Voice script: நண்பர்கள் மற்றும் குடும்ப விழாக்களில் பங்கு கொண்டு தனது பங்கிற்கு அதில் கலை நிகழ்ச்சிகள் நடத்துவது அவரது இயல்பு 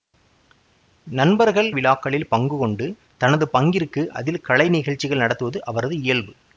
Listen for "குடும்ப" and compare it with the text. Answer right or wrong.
wrong